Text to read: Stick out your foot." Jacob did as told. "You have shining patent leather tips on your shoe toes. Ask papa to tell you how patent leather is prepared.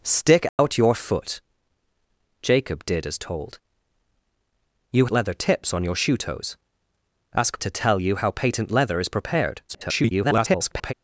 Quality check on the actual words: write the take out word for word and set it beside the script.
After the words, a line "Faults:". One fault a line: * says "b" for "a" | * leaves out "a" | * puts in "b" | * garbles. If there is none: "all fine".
Stick out your foot." Jacob did as told. "You leather tips on your shoe toes. Ask to tell you how patent leather is prepared. [garbled]
Faults:
* leaves out "have shining patent"
* leaves out "papa"
* garbles